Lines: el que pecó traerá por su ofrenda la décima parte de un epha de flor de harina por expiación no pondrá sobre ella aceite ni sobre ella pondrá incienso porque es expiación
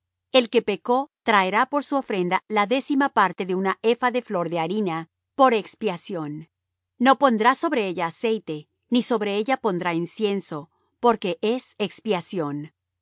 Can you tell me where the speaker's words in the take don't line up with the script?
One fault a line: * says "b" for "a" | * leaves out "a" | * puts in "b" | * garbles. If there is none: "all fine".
all fine